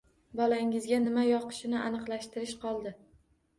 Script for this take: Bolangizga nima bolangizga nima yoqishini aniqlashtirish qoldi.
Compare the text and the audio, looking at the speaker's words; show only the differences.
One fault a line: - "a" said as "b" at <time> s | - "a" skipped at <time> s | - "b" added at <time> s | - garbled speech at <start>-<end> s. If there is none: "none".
- "bolangizga nima" skipped at 1.3 s